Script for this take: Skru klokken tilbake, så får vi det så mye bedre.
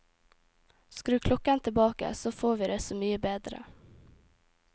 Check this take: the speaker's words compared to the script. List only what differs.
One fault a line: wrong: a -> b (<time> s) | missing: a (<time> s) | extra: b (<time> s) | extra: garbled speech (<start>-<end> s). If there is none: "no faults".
no faults